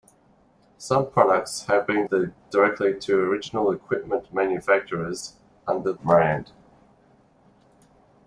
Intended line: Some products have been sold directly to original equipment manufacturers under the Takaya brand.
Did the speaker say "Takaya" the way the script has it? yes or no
no